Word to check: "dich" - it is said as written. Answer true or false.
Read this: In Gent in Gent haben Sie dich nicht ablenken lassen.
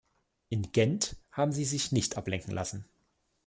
false